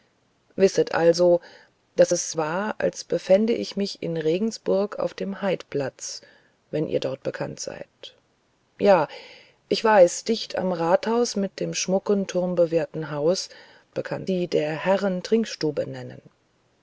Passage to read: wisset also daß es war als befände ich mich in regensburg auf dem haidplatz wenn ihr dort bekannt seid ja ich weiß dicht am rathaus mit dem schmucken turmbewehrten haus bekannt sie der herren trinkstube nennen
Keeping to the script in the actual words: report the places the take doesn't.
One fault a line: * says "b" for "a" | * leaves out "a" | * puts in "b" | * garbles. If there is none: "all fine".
all fine